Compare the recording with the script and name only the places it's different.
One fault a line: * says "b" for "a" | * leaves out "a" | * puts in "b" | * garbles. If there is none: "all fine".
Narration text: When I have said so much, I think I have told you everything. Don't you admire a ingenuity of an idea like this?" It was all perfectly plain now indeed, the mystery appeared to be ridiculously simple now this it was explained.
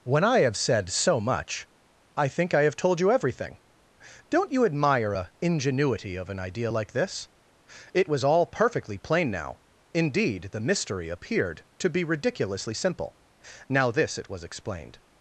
all fine